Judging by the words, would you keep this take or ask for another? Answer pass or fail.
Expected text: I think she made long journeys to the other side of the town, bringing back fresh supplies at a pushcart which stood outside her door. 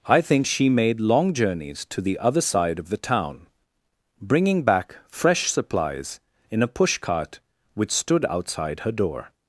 fail